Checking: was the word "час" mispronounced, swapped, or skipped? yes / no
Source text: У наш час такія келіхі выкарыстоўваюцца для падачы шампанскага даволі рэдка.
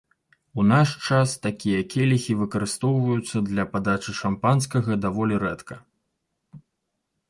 no